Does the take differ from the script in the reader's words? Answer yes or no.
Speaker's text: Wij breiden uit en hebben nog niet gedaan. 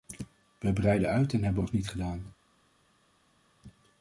no